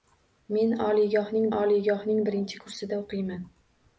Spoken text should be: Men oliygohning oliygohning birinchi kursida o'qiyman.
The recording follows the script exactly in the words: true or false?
true